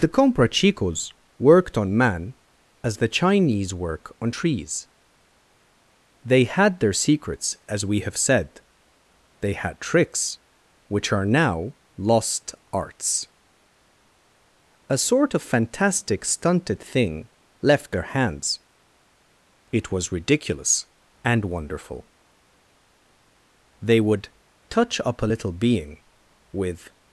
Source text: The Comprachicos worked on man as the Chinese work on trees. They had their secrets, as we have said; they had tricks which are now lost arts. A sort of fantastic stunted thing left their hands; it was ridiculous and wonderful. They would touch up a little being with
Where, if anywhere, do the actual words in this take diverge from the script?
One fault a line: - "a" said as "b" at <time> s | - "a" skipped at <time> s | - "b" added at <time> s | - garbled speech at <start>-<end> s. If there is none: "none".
none